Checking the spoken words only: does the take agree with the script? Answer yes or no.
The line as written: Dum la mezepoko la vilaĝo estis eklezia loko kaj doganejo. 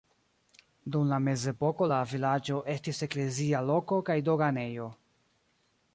yes